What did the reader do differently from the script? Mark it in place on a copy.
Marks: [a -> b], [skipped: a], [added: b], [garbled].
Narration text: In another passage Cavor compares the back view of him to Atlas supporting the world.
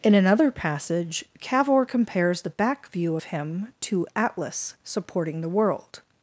In another passage Cavor compares the back view of him to Atlas supporting the world.